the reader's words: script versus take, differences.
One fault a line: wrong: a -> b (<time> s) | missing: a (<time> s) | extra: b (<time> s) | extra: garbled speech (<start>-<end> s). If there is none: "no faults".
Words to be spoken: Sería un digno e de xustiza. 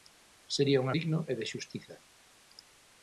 no faults